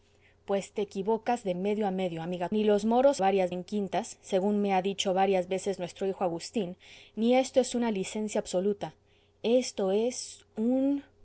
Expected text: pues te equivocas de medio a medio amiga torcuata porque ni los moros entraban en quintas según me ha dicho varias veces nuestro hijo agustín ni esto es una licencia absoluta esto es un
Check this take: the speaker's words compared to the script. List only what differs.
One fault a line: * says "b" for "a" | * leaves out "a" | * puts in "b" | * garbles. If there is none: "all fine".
* leaves out "torcuata porque"
* says "varias" for "entraban"